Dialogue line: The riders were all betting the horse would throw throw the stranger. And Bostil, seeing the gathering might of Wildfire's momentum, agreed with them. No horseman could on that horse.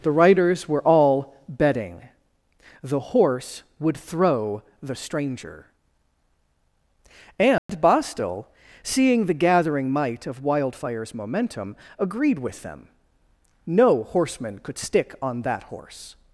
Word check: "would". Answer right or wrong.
right